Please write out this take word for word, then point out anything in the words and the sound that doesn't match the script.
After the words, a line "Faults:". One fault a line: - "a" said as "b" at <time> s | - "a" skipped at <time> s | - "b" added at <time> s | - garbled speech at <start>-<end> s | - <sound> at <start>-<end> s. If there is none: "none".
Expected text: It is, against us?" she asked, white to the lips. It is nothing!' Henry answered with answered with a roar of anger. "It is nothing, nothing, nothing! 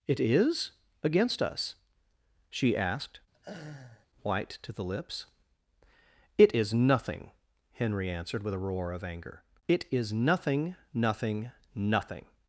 It is, against us?" she asked, white to the lips. It is nothing!' Henry answered with a roar of anger. "It is nothing, nothing, nothing!
Faults:
- laugh at 3.3-4.1 s
- "answered with" skipped at 8.5 s